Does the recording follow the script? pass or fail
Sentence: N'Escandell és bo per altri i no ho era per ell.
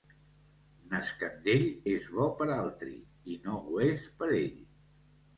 fail